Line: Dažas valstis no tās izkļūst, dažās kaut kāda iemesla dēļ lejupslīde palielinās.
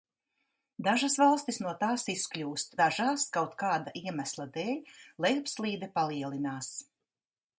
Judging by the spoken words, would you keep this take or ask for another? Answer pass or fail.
pass